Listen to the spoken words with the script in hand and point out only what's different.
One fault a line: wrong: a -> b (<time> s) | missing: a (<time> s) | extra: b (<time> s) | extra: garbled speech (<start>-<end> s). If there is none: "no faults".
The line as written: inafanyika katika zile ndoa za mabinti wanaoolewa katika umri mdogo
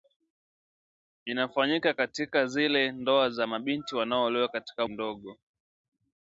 missing: umri (4.8 s)